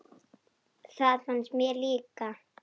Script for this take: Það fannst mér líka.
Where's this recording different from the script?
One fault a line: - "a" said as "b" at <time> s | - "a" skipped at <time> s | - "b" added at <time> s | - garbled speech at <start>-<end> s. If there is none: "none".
none